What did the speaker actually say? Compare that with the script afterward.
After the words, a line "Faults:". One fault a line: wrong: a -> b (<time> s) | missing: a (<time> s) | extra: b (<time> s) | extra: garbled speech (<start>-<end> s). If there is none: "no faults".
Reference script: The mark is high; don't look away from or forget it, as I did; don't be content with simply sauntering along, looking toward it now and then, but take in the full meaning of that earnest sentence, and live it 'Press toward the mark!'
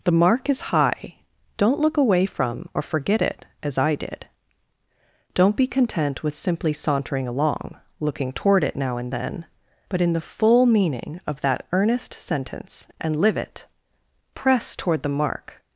The mark is high; don't look away from or forget it, as I did; don't be content with simply sauntering along, looking toward it now and then, but in the full meaning of that earnest sentence, and live it 'Press toward the mark!'
Faults:
missing: take (10.0 s)